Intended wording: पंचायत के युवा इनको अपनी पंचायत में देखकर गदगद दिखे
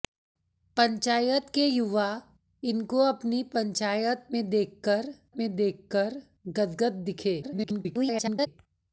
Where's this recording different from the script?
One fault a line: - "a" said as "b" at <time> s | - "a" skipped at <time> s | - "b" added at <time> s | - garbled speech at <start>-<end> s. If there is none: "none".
- "में देखकर" added at 5.4 s
- garbled speech at 7.4-8.5 s